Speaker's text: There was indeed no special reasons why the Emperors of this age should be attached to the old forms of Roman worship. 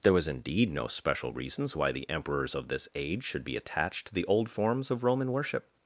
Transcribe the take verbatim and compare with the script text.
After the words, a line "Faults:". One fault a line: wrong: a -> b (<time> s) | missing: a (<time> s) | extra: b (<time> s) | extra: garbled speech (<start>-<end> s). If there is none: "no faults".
There was indeed no special reasons why the Emperors of this age should be attached to the old forms of Roman worship.
Faults:
no faults